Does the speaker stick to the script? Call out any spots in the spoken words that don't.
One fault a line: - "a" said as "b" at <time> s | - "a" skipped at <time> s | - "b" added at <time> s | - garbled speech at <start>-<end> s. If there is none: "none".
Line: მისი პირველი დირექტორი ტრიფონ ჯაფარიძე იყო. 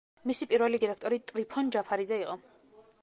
none